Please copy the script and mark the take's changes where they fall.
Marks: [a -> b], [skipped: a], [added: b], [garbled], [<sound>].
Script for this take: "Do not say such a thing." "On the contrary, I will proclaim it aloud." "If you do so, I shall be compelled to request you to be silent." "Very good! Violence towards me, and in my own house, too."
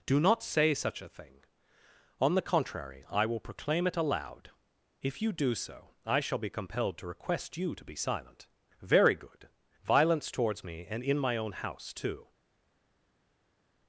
"Do not say such a thing." "On the contrary, I will proclaim it aloud." "If you do so, I shall be compelled to request you to be silent." "Very good! Violence towards me, and in my own house, too."